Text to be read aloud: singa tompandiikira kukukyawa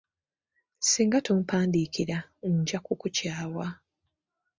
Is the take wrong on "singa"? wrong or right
right